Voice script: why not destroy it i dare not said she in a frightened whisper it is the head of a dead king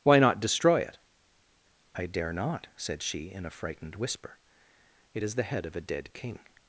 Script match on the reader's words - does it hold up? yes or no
yes